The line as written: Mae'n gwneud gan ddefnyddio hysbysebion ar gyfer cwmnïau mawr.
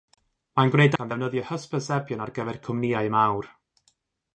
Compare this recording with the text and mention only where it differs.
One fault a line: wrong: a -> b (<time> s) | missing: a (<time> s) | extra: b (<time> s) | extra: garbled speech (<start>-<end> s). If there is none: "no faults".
no faults